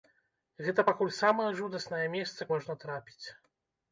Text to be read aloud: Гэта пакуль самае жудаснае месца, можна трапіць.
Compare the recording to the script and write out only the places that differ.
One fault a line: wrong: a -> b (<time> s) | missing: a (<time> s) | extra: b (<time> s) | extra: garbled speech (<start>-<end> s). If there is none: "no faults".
no faults